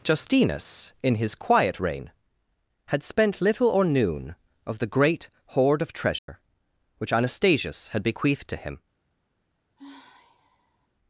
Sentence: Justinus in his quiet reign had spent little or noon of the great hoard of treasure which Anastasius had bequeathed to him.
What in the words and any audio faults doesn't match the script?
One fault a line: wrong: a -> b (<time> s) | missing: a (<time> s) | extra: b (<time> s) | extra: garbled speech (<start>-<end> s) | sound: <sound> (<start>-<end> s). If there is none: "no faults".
sound: dropout (6.2-6.3 s)
sound: sigh (9.8-10.9 s)